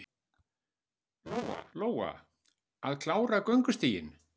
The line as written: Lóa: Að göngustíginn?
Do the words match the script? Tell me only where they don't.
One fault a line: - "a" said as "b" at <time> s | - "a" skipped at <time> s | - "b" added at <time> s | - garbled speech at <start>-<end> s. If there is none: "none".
- "klára" added at 3.0 s